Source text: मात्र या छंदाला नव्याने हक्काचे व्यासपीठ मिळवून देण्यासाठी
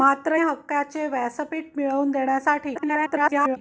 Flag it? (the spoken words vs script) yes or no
yes